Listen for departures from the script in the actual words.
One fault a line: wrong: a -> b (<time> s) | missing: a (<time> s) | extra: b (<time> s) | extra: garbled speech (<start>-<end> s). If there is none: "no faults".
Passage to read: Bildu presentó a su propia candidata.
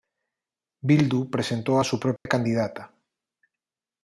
no faults